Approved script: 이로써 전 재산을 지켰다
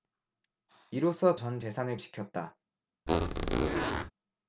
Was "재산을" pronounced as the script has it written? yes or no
yes